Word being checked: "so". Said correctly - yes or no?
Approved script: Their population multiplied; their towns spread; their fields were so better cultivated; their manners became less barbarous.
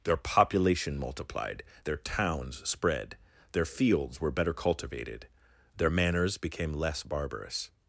no